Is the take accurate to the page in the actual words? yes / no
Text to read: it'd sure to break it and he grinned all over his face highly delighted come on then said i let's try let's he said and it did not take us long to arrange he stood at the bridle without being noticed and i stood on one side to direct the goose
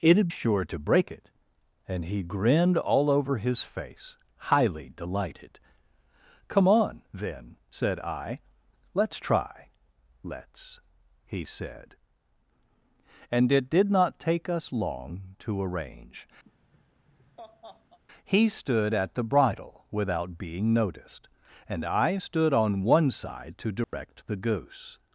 yes